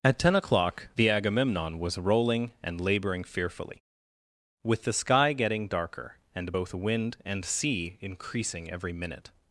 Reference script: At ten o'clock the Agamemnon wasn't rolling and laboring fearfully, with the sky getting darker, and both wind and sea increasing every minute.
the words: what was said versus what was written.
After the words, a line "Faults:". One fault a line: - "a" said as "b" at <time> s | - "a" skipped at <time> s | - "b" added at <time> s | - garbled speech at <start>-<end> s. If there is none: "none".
At ten o'clock the Agamemnon was rolling and laboring fearfully, with the sky getting darker, and both wind and sea increasing every minute.
Faults:
- "wasn't" said as "was" at 1.8 s